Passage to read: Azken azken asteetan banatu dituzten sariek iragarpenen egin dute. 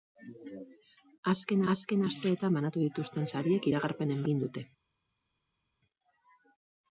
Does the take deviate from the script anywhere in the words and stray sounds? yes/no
no